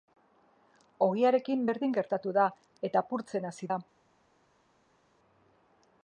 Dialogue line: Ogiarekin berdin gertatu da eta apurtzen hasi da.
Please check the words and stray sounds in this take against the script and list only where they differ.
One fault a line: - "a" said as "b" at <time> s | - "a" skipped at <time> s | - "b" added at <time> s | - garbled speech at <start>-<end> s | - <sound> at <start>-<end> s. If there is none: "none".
none